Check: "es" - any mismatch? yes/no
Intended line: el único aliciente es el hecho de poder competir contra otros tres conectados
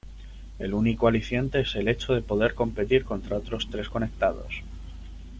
no